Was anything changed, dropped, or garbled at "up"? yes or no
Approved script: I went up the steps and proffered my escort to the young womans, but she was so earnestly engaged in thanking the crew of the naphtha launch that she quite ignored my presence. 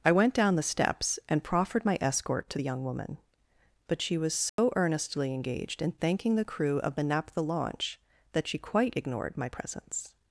yes